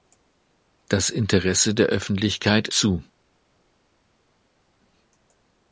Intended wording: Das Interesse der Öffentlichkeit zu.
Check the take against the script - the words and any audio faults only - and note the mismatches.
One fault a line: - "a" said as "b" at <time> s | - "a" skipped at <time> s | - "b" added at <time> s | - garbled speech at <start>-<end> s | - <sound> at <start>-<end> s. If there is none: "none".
none